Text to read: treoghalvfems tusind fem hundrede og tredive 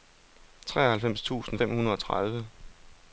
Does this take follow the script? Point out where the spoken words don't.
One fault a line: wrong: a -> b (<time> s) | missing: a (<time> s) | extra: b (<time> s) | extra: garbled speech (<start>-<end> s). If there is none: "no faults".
no faults